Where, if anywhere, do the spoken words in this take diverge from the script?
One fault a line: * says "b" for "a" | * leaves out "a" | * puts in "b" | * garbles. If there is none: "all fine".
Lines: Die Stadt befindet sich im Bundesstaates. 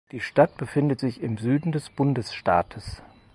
* puts in "Süden des"